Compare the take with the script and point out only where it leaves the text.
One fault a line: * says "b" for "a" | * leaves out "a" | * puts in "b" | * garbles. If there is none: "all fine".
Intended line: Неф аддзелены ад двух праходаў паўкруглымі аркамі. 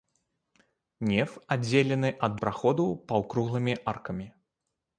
* leaves out "двух"